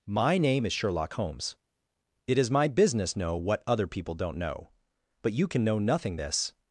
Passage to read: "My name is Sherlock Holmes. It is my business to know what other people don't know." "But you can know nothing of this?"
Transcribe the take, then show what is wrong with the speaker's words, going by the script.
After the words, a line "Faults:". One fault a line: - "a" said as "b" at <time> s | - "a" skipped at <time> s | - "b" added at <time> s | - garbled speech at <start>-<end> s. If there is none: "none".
"My name is Sherlock Holmes. It is my business know what other people don't know." "But you can know nothing this?"
Faults:
- "to" skipped at 3.2 s
- "of" skipped at 6.2 s